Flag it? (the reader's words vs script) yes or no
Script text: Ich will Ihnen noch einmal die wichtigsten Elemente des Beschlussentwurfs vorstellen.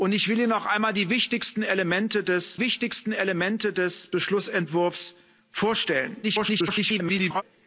yes